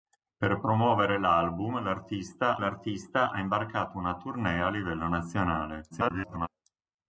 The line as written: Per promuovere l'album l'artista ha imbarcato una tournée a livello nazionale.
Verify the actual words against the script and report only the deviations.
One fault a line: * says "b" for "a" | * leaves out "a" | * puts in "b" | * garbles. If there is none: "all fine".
* puts in "l'artista"
* garbles